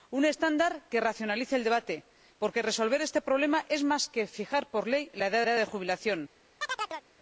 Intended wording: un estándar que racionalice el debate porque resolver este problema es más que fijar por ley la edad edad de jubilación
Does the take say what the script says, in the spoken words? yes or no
yes